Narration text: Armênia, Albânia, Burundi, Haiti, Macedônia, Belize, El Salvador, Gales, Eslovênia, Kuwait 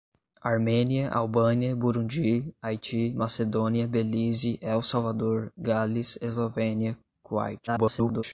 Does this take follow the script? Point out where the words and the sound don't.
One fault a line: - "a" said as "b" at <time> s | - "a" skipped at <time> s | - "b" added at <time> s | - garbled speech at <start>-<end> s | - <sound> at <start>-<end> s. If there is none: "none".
- garbled speech at 7.7-8.2 s